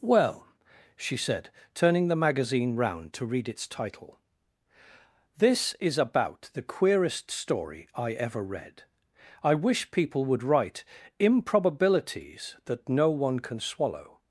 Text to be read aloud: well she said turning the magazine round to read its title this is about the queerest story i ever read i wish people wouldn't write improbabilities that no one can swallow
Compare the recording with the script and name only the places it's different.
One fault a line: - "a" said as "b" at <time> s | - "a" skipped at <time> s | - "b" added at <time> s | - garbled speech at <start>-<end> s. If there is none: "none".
- "wouldn't" said as "would" at 10.2 s